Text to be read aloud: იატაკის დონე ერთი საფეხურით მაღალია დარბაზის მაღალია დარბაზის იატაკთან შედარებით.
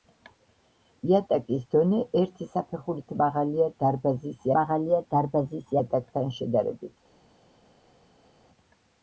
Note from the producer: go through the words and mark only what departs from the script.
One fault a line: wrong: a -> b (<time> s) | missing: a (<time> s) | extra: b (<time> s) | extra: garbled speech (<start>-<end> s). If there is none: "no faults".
no faults